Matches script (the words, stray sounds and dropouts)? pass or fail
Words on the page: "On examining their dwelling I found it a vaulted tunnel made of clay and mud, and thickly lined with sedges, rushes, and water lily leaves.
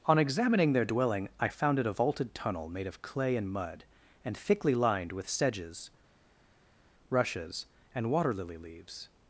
pass